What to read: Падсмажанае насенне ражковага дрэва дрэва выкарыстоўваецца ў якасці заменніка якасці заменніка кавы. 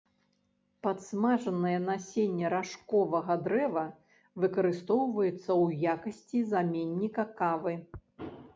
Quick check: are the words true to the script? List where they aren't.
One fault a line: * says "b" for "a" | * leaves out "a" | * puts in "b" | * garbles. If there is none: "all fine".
* leaves out "дрэва"
* leaves out "якасці заменніка"